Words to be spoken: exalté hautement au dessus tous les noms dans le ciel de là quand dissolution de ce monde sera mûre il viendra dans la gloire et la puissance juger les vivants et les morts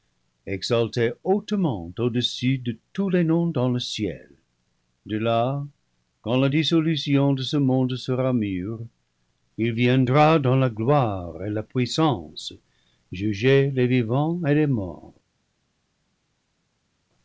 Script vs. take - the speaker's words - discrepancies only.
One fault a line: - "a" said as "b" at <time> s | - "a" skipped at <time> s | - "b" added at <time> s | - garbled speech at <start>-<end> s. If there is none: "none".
- "de" added at 2.6 s
- "la" added at 6.4 s